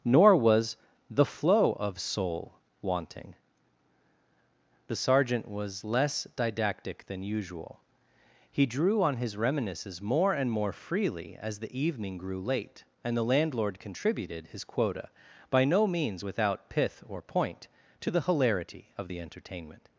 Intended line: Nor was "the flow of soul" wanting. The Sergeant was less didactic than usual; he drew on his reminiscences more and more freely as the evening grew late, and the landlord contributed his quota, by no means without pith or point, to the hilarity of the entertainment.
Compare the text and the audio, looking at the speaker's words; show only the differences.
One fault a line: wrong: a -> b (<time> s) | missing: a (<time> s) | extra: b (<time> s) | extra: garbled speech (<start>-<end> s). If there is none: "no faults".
no faults